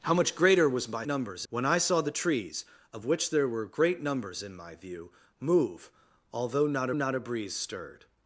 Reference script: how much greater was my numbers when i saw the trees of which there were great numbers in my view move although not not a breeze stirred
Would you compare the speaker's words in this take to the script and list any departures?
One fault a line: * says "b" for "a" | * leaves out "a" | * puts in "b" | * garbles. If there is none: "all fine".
all fine